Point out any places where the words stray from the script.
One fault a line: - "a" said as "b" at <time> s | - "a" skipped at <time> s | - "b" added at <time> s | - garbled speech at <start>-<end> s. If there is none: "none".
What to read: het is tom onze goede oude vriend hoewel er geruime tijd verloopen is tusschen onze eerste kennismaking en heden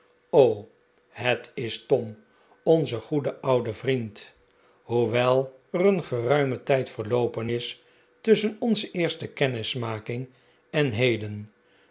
- "een" added at 5.8 s